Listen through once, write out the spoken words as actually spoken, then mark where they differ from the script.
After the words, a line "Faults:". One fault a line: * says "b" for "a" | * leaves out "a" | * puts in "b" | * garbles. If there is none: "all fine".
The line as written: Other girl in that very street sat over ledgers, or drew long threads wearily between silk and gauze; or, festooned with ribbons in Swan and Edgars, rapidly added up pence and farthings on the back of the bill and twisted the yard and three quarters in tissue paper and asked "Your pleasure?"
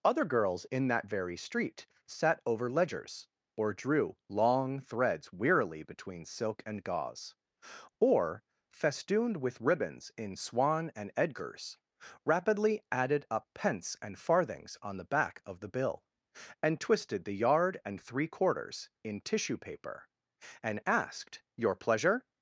Other girls in that very street sat over ledgers, or drew long threads wearily between silk and gauze; or, festooned with ribbons in Swan and Edgars, rapidly added up pence and farthings on the back of the bill and twisted the yard and three quarters in tissue paper and asked "Your pleasure?"
Faults:
* says "girls" for "girl"